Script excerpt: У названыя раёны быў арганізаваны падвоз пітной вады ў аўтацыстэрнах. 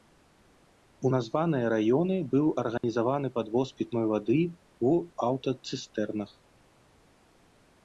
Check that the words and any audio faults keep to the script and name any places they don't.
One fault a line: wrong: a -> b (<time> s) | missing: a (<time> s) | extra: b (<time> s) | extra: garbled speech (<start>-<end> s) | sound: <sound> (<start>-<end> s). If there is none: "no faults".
sound: dropout (2.8-2.8 s)